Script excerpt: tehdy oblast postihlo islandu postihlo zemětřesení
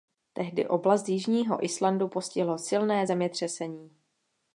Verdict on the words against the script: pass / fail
fail